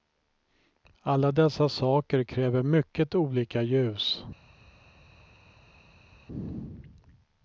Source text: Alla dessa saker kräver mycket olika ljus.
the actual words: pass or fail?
pass